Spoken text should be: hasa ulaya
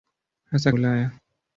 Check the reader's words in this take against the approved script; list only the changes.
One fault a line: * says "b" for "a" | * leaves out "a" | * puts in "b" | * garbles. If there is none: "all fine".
all fine